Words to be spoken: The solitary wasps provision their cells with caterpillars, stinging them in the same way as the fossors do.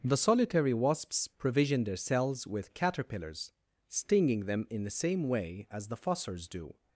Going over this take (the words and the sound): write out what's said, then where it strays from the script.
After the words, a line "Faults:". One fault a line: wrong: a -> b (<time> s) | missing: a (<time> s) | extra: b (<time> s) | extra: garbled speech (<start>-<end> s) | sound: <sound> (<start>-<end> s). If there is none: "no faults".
The solitary wasps provision their cells with caterpillars, stinging them in the same way as the fossors do.
Faults:
no faults